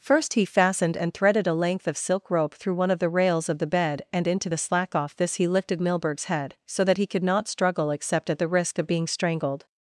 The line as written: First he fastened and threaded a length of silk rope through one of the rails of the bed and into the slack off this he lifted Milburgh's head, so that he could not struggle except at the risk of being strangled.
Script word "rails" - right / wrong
right